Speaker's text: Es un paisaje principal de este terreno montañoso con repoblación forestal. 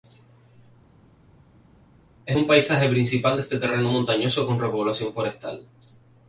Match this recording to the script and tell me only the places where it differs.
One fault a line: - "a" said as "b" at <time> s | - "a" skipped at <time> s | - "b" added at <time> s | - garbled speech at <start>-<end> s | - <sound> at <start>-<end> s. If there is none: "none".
none